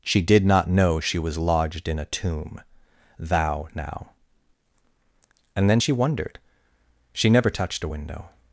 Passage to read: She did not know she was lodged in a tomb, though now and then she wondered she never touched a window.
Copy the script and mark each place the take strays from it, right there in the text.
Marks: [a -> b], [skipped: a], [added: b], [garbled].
She did not know she was lodged in a tomb, [though -> thou] now and then she wondered she never touched a window.